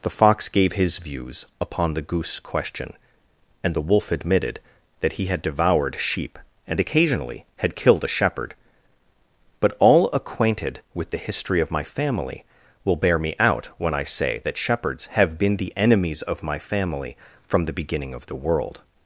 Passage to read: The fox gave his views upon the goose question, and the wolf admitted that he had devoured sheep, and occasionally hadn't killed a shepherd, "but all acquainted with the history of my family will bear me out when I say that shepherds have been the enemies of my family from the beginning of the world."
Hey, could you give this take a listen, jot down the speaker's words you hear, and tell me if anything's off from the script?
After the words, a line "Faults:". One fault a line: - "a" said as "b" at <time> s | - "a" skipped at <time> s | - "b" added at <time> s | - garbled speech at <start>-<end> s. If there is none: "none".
The fox gave his views upon the goose question, and the wolf admitted that he had devoured sheep, and occasionally had killed a shepherd, "but all acquainted with the history of my family will bear me out when I say that shepherds have been the enemies of my family from the beginning of the world."
Faults:
- "hadn't" said as "had" at 7.6 s